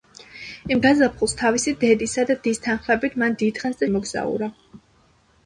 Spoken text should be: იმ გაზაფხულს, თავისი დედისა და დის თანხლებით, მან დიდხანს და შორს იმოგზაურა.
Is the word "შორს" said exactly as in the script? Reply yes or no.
no